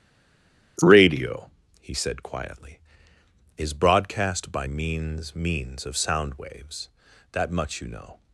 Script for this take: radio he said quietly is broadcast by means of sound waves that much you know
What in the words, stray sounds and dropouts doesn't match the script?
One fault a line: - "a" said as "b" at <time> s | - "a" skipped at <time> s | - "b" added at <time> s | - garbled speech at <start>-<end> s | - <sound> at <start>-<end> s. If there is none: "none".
- "means" added at 5.3 s